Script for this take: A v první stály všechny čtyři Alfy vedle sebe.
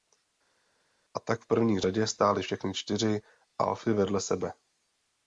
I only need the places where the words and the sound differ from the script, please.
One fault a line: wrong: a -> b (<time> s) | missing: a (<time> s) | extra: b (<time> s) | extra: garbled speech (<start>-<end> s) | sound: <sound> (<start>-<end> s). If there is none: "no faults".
extra: tak (1.2 s)
extra: řadě (1.8 s)